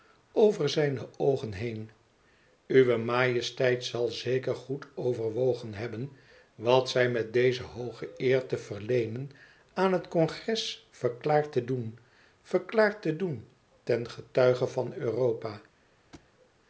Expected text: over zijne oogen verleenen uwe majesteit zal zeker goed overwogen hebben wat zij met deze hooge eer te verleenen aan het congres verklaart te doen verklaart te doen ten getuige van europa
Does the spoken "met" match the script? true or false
true